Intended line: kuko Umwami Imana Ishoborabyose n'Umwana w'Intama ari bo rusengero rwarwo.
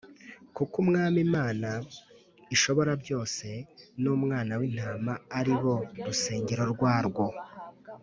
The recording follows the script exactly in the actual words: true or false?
true